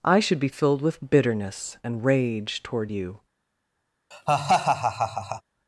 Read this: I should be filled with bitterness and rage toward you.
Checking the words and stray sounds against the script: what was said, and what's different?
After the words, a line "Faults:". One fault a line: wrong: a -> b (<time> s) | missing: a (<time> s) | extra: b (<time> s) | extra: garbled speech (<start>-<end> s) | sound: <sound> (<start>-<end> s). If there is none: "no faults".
I should be filled with bitterness and rage toward you.
Faults:
sound: laugh (4.1-5.4 s)